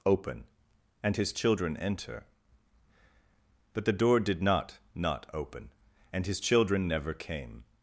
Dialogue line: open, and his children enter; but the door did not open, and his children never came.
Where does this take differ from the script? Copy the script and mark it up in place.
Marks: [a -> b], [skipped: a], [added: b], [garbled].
open, and his children enter; but the door did not [added: not] open, and his children never came.